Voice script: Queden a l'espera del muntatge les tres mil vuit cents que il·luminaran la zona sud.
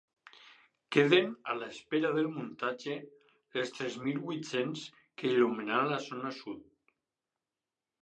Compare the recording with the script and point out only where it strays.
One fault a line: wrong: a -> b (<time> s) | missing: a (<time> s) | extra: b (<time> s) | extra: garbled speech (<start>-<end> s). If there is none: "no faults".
no faults